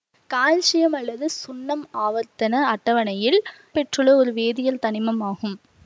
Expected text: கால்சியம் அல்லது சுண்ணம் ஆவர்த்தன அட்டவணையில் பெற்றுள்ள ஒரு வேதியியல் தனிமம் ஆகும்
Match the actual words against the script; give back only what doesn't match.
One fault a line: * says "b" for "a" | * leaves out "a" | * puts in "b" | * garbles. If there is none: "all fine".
all fine